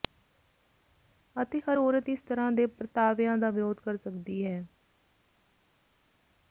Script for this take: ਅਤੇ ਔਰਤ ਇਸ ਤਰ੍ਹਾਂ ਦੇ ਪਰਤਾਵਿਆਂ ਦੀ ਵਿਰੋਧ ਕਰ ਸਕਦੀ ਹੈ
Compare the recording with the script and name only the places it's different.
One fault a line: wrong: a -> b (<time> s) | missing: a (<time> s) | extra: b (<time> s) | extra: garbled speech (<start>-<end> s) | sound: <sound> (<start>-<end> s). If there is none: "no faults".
extra: ਹਰ (1.6 s)
wrong: ਦੀ -> ਦਾ (3.4 s)